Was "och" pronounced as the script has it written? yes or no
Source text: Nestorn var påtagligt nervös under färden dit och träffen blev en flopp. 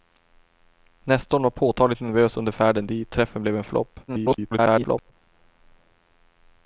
no